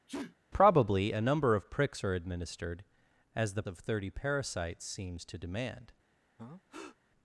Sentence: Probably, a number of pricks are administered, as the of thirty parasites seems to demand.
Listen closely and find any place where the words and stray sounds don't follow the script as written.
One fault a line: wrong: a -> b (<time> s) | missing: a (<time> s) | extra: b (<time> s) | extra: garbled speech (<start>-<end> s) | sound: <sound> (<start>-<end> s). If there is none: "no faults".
sound: sneeze (0.1-0.4 s)
sound: breath (6.4-7.0 s)